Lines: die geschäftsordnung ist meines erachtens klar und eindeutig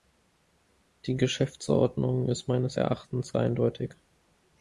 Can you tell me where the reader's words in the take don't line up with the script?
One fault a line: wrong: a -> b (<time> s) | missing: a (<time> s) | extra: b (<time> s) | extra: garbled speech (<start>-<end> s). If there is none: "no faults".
missing: klar und (3.3 s)